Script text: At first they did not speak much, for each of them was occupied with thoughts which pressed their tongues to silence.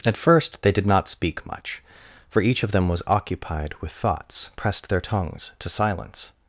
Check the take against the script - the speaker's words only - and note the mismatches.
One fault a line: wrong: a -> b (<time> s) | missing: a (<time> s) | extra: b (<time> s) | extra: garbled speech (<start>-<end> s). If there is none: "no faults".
missing: which (4.5 s)